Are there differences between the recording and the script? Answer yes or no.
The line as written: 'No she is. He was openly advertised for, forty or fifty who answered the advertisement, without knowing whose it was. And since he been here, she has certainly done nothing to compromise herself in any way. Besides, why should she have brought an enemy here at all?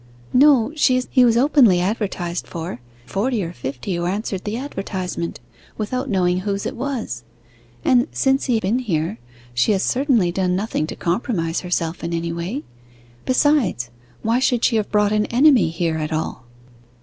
no